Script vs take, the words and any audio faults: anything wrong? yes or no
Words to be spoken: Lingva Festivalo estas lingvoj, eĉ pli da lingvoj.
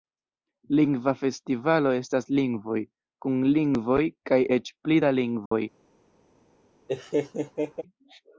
yes